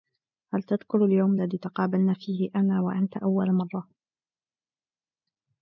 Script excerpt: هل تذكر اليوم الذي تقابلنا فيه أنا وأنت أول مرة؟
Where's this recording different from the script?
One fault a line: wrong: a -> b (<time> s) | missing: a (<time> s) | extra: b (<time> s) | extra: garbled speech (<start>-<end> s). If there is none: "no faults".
no faults